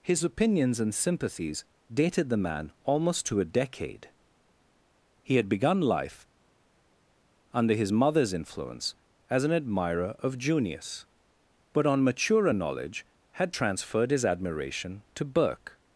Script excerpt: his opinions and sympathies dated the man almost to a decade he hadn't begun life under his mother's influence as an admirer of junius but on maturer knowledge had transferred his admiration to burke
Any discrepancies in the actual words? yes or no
yes